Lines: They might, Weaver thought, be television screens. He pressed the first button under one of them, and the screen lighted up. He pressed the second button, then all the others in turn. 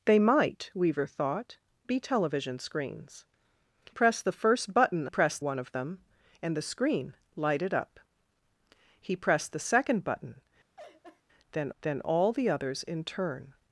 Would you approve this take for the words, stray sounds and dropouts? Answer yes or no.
no